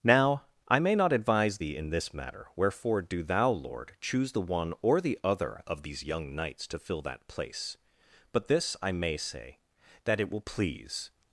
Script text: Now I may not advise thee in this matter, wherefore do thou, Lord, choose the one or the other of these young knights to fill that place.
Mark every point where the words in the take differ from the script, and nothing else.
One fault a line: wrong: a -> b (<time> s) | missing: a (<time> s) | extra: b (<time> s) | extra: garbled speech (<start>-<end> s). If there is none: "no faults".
extra: But this I may say that it will please (8.3 s)